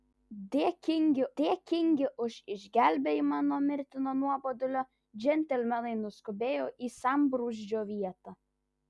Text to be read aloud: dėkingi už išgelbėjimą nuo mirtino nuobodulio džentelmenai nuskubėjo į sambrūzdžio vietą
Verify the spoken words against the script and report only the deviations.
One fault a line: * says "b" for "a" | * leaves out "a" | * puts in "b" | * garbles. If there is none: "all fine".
* puts in "dėkingi"